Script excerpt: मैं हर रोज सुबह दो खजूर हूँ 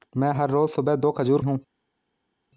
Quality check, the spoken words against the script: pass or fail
pass